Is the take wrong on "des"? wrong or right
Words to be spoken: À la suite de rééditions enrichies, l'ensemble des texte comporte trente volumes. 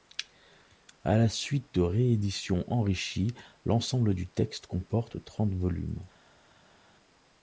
wrong